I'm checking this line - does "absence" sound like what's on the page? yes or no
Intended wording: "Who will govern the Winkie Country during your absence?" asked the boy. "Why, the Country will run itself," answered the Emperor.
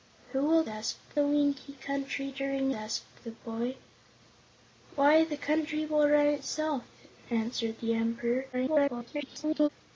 no